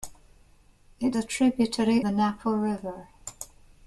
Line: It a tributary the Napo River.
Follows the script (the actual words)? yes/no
yes